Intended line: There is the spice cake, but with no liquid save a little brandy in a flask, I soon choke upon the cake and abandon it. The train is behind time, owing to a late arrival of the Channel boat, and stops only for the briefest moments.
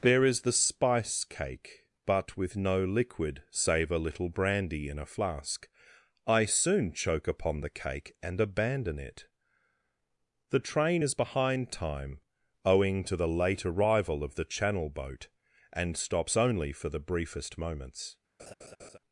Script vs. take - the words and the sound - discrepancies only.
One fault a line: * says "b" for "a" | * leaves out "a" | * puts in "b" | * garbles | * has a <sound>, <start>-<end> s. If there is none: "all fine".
* says "the" for "a"
* has a laugh, 18.4-19.0 s